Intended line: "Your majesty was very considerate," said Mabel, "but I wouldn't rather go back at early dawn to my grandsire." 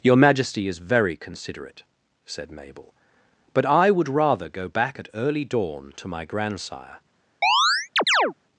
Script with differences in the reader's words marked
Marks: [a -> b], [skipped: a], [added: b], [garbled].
"Your majesty [was -> is] very considerate," said Mabel, "but I [wouldn't -> would] rather go back at early dawn to my grandsire."